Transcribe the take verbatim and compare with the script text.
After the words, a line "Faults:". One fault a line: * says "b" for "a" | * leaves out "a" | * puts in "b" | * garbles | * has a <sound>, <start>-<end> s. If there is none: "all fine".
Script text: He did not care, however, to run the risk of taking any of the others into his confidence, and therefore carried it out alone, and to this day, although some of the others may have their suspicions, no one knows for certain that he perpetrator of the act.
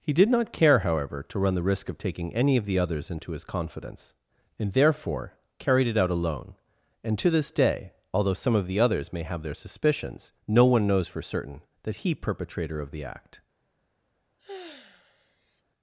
He did not care, however, to run the risk of taking any of the others into his confidence, and therefore carried it out alone, and to this day, although some of the others may have their suspicions, no one knows for certain that he perpetrator of the act.
Faults:
* has a sigh, 14.4-15.6 s